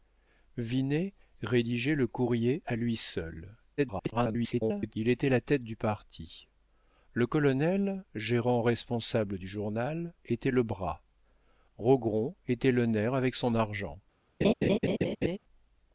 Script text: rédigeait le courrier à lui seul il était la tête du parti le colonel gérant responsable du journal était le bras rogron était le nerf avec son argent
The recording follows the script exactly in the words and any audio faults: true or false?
false